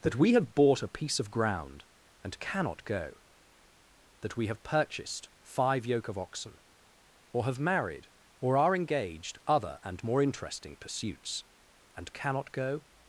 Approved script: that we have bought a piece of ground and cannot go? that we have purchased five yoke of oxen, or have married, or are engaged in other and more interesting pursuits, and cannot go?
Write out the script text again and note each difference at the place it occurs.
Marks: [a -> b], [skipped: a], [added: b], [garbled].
that we have bought a piece of ground and cannot go? that we have purchased five yoke of oxen, or have married, or are engaged [skipped: in] other and more interesting pursuits, and cannot go?